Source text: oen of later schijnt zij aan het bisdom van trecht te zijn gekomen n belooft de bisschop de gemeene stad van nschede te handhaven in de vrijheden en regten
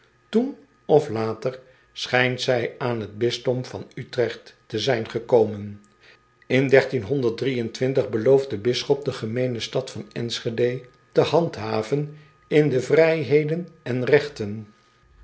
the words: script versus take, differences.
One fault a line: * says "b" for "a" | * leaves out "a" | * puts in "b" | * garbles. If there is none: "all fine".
all fine